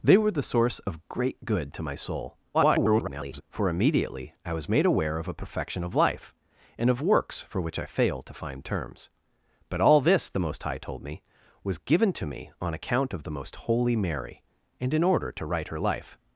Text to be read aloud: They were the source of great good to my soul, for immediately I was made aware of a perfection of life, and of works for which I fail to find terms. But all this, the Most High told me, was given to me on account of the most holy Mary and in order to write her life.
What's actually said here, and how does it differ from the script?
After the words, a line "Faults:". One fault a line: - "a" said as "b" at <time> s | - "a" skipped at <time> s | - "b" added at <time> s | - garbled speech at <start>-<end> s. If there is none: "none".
They were the source of great good to my soul, [garbled] for immediately I was made aware of a perfection of life, and of works for which I fail to find terms. But all this, the Most High told me, was given to me on account of the most holy Mary and in order to write her life.
Faults:
- garbled speech at 2.5-3.4 s